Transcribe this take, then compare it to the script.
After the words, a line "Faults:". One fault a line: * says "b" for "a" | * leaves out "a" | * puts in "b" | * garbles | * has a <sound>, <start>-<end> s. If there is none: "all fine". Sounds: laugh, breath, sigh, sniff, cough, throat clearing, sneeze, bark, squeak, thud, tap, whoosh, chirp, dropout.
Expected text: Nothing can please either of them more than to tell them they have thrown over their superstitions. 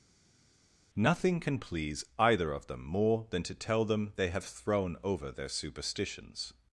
Nothing can please either of them more than to tell them they have thrown over their superstitions.
Faults:
all fine